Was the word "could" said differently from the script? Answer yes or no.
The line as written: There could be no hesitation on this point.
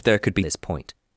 no